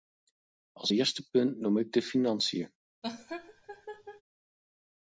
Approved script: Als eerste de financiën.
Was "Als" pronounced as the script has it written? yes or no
yes